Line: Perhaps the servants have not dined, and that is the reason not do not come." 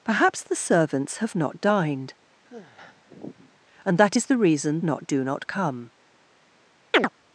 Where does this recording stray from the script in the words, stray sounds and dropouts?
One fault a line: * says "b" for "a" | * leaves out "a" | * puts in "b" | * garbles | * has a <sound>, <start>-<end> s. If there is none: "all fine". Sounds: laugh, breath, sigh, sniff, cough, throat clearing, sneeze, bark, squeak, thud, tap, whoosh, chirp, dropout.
* has a sigh, 2.4-3.6 s
* has a chirp, 6.9-7.1 s